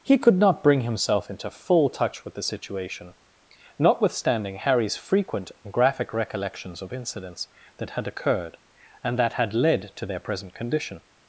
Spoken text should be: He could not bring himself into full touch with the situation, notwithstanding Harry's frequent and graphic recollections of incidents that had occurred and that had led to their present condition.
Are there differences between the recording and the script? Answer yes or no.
no